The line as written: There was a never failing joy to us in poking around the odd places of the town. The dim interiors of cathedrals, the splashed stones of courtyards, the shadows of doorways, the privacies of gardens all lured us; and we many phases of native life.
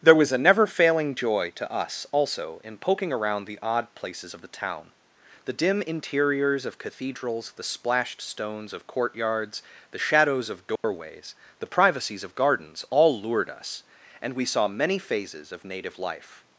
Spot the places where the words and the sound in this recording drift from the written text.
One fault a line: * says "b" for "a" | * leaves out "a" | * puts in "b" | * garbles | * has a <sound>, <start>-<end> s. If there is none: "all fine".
* puts in "also"
* has a dropout, 10.8-10.8 s
* puts in "saw"